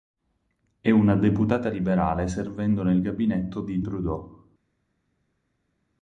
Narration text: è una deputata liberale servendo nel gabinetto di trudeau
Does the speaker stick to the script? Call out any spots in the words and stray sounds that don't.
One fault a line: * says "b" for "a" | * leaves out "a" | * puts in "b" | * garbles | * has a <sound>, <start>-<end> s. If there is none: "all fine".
all fine